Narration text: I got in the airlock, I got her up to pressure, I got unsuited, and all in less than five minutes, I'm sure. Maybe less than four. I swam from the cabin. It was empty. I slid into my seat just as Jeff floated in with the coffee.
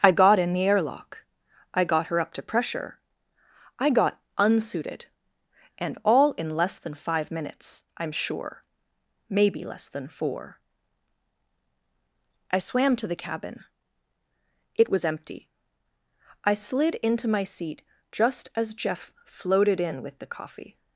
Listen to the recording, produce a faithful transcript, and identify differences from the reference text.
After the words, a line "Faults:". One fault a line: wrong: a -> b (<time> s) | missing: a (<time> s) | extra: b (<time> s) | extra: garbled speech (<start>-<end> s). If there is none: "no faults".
I got in the airlock, I got her up to pressure, I got unsuited, and all in less than five minutes, I'm sure. Maybe less than four. I swam to the cabin. It was empty. I slid into my seat just as Jeff floated in with the coffee.
Faults:
wrong: from -> to (12.9 s)